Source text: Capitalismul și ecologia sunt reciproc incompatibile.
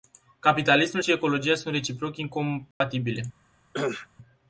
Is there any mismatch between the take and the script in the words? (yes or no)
no